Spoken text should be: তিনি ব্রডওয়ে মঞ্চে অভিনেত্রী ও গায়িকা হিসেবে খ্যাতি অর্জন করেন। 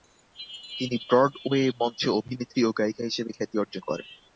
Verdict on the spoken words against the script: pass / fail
pass